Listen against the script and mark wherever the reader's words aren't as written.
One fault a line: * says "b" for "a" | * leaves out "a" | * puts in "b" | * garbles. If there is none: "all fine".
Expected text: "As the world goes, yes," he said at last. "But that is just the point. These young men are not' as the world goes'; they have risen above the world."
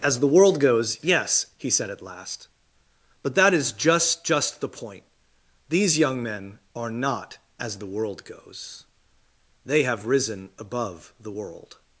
* puts in "just"